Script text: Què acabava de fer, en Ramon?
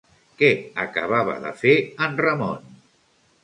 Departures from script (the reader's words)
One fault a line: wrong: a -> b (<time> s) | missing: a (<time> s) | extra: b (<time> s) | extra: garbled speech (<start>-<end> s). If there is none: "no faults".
no faults